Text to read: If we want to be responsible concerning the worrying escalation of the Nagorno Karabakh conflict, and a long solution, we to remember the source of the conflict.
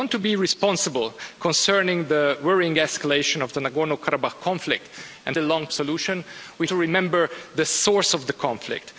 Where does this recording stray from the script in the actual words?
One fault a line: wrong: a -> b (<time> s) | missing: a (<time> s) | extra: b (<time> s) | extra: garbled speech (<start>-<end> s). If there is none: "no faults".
no faults